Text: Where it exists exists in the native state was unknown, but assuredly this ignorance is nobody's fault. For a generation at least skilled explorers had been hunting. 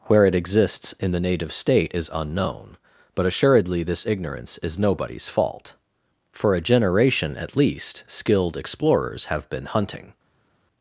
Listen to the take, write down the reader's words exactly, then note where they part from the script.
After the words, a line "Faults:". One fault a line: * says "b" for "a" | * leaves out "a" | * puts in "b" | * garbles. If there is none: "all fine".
Where it exists in the native state is unknown, but assuredly this ignorance is nobody's fault. For a generation at least skilled explorers have been hunting.
Faults:
* leaves out "exists"
* says "is" for "was"
* says "have" for "had"